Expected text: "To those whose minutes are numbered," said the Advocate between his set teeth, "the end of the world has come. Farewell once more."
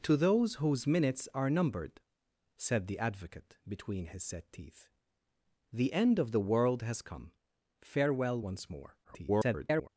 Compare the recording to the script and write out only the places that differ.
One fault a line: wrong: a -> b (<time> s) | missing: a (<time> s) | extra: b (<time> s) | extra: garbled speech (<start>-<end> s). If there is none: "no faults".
extra: garbled speech (9.0-9.9 s)